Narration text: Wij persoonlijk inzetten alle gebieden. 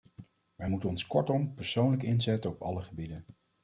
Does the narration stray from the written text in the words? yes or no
yes